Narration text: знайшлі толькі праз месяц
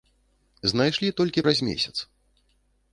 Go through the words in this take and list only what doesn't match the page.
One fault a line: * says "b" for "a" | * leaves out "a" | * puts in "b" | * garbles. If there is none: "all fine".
all fine